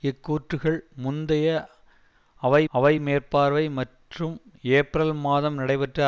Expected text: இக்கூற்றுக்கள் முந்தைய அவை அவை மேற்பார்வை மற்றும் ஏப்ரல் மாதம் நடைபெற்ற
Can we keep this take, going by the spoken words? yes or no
yes